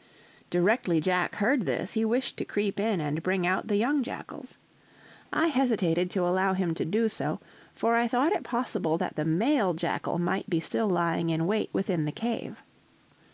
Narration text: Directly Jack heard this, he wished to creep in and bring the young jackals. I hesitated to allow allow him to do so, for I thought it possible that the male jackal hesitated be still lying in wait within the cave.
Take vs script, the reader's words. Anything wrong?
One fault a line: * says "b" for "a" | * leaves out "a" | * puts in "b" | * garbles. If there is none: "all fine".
* puts in "out"
* leaves out "allow"
* says "might" for "hesitated"